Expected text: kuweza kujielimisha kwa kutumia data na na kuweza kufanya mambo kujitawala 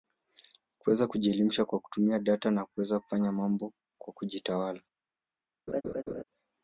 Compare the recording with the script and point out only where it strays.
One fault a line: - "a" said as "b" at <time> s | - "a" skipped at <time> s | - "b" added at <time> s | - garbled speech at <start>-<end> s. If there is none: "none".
- "na" skipped at 2.6 s
- "kwa" added at 4.0 s